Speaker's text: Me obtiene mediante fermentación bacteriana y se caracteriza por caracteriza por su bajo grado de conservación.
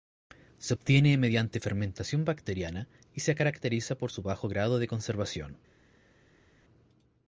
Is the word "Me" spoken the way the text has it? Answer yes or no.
no